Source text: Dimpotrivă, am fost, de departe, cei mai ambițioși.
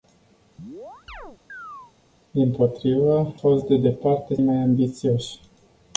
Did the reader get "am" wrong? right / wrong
wrong